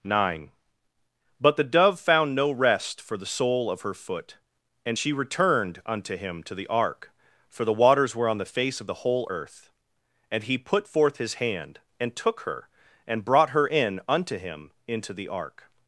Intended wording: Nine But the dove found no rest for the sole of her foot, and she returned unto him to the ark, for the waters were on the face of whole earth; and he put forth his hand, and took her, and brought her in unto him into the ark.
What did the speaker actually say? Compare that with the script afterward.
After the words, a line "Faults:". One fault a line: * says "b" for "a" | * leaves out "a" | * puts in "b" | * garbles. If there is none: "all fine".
Nine But the dove found no rest for the sole of her foot, and she returned unto him to the ark, for the waters were on the face of the whole earth; and he put forth his hand, and took her, and brought her in unto him into the ark.
Faults:
* puts in "the"